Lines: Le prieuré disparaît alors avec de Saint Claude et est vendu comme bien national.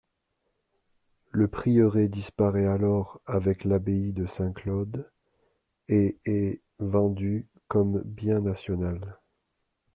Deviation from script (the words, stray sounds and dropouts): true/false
true